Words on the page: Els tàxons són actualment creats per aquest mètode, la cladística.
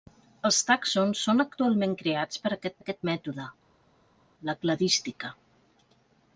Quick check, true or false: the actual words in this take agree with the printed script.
false